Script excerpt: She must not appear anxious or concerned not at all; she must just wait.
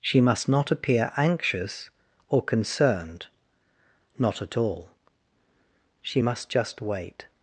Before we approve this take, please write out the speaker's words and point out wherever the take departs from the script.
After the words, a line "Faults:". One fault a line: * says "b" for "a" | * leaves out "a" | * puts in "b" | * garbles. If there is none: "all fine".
She must not appear anxious or concerned not at all; she must just wait.
Faults:
all fine